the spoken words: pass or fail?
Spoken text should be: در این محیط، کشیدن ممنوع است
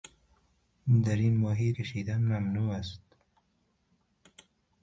pass